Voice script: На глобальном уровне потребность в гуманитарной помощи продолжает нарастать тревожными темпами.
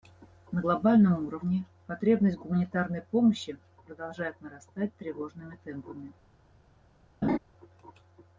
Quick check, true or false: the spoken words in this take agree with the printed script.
true